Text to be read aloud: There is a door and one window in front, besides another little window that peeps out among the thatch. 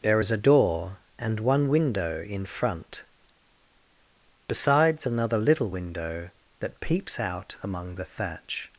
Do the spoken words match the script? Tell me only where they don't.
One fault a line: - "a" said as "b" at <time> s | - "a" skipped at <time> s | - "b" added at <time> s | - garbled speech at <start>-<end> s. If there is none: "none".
none